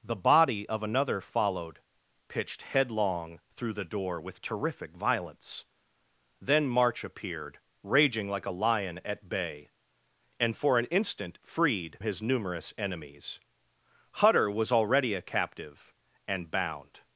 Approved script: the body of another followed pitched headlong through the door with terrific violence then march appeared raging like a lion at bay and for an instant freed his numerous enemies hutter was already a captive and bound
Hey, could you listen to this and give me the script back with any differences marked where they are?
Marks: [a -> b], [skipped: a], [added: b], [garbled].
the body of another followed pitched headlong through the door with terrific violence then march appeared raging like a lion at bay and for an instant freed his numerous enemies hutter was already a captive and bound